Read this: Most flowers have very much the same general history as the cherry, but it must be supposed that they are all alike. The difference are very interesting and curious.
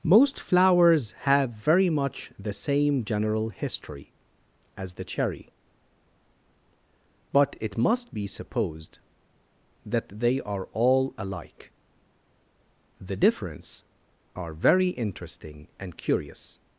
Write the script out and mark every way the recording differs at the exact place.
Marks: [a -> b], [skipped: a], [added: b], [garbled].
Most flowers have very much the same general history as the cherry, but it must be supposed that they are all alike. The difference are very interesting and curious.